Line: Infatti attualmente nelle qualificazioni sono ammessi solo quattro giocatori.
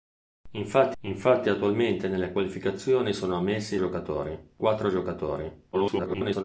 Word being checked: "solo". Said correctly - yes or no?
no